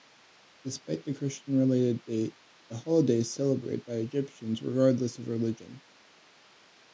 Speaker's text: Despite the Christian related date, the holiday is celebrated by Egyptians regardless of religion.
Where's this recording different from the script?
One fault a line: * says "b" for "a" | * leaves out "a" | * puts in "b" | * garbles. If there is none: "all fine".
all fine